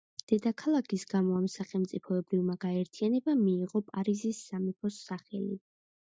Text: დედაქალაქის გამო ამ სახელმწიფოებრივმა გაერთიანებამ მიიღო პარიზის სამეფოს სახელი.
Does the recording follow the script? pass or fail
pass